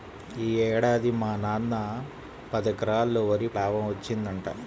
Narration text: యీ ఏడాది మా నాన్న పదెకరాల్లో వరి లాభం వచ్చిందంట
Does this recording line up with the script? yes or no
yes